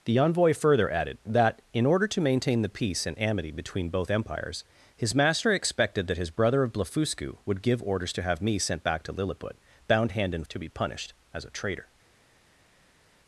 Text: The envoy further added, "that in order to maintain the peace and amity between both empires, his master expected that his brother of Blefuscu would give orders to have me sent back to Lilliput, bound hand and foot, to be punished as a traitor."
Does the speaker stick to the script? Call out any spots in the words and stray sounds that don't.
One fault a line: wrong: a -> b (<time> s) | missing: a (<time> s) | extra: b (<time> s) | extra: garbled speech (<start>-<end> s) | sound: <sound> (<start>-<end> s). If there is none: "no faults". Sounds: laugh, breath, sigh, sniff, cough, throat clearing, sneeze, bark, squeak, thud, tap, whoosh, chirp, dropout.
missing: foot (10.5 s)